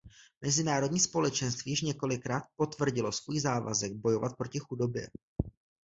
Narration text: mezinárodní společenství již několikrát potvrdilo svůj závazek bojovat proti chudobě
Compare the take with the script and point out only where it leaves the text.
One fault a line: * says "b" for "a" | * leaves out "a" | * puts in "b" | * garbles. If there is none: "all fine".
all fine